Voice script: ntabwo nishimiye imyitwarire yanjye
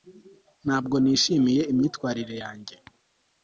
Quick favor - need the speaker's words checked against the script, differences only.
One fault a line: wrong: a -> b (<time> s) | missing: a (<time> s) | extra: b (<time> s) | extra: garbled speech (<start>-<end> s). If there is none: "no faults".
no faults